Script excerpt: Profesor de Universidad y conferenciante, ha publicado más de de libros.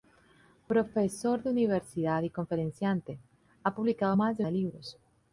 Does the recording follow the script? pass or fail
pass